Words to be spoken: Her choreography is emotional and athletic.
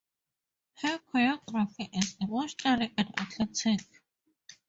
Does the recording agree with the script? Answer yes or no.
yes